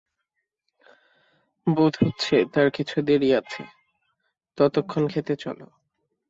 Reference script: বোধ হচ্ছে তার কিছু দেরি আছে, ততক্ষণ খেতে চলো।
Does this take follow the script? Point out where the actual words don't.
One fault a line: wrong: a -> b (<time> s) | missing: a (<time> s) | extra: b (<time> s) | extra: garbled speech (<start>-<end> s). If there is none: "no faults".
no faults